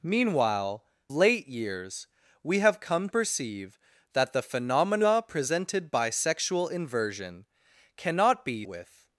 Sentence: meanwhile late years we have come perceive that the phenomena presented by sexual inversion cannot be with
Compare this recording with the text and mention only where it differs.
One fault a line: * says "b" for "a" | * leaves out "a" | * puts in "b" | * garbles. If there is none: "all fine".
all fine